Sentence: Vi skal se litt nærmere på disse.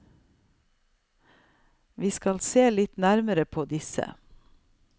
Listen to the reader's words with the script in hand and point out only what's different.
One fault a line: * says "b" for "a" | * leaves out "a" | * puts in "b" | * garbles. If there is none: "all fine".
all fine